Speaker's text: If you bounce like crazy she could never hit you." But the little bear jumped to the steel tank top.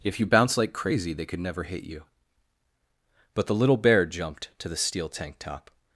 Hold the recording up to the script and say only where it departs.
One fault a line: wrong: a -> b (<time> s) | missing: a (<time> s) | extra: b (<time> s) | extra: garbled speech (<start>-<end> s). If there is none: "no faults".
wrong: she -> they (1.1 s)